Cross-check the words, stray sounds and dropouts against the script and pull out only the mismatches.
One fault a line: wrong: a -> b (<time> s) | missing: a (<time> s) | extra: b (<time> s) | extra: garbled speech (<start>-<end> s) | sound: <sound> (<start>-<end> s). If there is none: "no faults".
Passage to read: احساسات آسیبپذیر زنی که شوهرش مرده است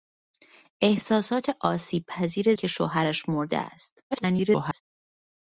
missing: زنی (2.5 s)
extra: garbled speech (4.1-4.8 s)